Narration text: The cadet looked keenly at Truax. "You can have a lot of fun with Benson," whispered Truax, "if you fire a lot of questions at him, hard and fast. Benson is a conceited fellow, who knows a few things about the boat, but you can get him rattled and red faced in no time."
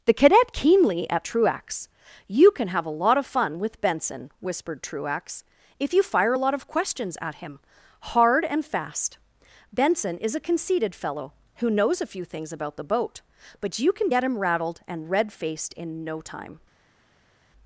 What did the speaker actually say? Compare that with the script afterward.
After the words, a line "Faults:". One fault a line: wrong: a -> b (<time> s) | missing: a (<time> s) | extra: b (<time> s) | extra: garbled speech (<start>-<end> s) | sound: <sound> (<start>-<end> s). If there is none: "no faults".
The cadet keenly at Truax. "You can have a lot of fun with Benson," whispered Truax, "if you fire a lot of questions at him, hard and fast. Benson is a conceited fellow, who knows a few things about the boat, but you can get him rattled and red faced in no time."
Faults:
missing: looked (0.5 s)